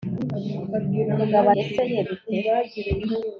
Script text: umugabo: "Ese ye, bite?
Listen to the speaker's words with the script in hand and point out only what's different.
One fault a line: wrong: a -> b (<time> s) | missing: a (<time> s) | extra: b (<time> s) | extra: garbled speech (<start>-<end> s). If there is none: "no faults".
no faults